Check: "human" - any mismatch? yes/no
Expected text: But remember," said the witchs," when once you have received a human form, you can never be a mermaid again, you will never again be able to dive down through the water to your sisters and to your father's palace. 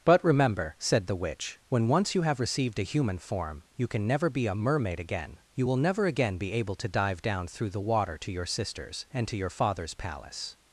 no